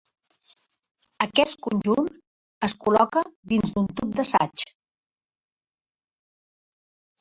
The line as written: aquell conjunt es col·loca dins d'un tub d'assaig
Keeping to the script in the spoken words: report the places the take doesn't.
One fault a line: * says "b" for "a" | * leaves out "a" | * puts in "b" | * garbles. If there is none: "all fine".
* says "aquest" for "aquell"